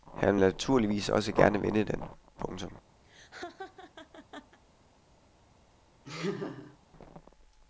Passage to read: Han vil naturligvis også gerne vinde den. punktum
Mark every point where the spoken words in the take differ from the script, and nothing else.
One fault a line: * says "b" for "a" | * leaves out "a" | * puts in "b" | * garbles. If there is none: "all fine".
all fine